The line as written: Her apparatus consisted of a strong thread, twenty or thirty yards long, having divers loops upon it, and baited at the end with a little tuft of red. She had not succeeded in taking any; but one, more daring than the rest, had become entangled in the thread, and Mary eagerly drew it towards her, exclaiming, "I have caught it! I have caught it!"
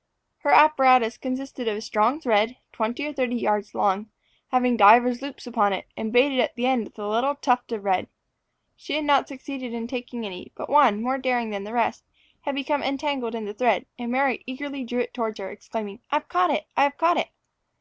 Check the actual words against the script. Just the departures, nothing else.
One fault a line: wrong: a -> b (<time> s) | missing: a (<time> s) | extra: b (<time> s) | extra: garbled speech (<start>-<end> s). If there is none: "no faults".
no faults